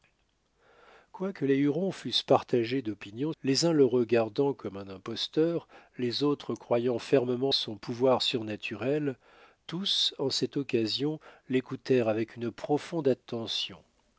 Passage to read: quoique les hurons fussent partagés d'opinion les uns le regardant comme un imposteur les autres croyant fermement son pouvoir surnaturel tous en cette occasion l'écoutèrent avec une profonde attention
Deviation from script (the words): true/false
false